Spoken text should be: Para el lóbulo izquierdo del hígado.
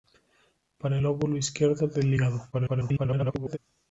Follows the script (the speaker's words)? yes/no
no